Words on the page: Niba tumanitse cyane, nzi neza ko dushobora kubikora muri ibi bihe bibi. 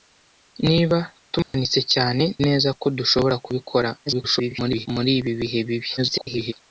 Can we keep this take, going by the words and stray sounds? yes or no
no